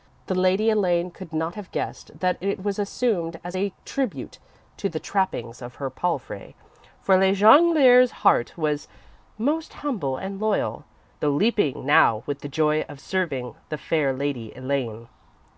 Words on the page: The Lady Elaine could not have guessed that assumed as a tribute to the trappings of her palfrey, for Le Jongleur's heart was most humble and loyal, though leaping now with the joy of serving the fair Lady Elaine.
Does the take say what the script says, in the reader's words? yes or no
no